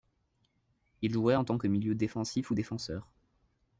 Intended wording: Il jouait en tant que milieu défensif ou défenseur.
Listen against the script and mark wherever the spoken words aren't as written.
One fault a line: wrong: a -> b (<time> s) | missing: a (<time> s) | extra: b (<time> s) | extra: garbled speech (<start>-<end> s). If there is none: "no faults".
no faults